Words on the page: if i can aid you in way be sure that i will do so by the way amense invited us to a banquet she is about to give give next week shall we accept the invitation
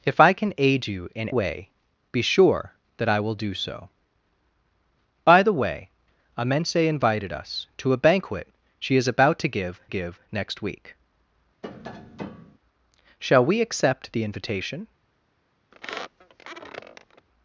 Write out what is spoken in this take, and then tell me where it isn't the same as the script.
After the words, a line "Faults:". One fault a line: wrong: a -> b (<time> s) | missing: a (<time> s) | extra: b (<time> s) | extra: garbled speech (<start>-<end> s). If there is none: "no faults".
if i can aid you in way be sure that i will do so by the way amense invited us to a banquet she is about to give give next week shall we accept the invitation
Faults:
no faults